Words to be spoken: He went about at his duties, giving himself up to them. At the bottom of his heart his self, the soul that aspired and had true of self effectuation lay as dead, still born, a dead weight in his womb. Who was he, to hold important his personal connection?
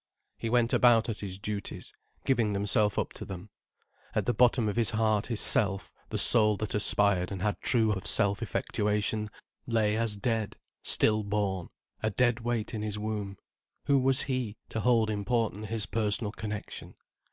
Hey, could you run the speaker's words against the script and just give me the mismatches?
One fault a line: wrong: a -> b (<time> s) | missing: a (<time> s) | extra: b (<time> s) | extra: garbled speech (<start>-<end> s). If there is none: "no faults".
no faults